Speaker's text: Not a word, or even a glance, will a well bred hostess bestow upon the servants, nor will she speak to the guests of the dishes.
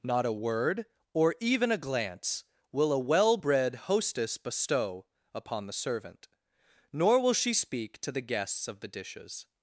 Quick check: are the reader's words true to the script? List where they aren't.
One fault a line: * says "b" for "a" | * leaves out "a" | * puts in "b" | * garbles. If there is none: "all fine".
* says "servant" for "servants"